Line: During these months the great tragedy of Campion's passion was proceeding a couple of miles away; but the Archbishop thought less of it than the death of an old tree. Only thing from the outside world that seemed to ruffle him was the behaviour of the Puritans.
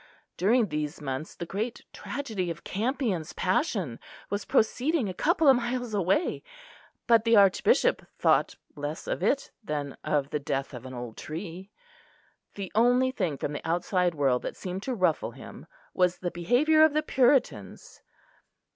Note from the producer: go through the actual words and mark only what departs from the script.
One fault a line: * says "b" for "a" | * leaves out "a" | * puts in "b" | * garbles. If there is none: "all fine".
* puts in "of"
* puts in "The"